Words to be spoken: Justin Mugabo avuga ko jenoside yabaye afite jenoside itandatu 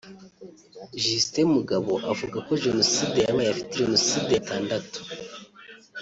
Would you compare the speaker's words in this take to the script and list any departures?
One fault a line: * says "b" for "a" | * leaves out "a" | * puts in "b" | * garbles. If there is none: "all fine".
all fine